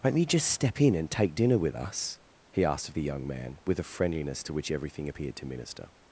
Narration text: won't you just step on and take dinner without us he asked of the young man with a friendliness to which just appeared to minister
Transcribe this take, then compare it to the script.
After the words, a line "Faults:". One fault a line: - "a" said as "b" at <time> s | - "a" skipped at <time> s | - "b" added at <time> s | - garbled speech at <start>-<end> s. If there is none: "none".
won't you just step in and take dinner with us he asked of the young man with a friendliness to which everything appeared to minister
Faults:
- "on" said as "in" at 0.8 s
- "without" said as "with" at 1.6 s
- "just" said as "everything" at 4.7 s